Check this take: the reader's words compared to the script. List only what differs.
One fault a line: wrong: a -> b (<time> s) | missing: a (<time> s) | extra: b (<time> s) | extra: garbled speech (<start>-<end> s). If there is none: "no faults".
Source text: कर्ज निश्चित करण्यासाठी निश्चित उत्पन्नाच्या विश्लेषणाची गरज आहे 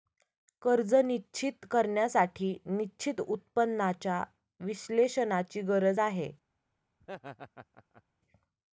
no faults